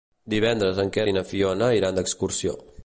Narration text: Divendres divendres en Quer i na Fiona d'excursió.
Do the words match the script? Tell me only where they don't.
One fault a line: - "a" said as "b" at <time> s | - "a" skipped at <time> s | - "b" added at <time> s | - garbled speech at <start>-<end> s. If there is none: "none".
- "divendres" skipped at 0.8 s
- "iran" added at 1.8 s